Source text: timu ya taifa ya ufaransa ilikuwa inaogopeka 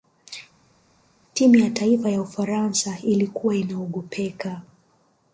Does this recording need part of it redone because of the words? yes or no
no